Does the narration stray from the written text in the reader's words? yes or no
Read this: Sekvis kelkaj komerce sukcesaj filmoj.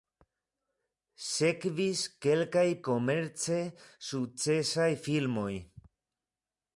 no